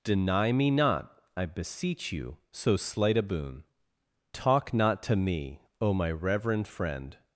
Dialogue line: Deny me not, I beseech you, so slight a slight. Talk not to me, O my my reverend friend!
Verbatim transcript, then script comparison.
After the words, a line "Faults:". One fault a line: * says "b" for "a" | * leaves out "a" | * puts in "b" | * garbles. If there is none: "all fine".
Deny me not, I beseech you, so slight a boon. Talk not to me, O my reverend friend!
Faults:
* says "boon" for "slight"
* leaves out "my"